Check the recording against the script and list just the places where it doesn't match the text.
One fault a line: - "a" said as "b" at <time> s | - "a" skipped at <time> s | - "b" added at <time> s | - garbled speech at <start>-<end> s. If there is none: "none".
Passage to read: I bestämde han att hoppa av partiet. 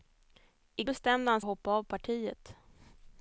none